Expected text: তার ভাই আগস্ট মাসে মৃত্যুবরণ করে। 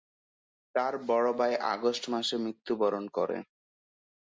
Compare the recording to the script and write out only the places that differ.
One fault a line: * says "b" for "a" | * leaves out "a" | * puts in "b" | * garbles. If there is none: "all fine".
* puts in "বড়"